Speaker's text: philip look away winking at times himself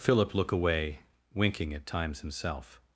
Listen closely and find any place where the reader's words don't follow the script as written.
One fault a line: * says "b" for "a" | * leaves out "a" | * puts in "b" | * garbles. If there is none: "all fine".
all fine